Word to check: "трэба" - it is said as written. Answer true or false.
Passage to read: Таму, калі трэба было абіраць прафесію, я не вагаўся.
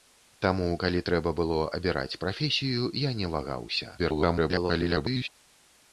true